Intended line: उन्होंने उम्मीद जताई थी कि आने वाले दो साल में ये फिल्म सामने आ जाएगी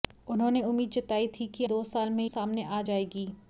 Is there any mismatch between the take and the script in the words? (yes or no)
yes